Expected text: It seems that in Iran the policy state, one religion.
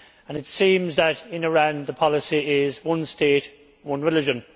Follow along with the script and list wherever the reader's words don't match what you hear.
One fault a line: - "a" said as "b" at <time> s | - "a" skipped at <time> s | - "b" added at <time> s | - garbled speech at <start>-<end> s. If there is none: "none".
- "is one" added at 2.6 s